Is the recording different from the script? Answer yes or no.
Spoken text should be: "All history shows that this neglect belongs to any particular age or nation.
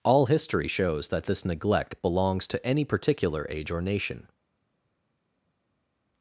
no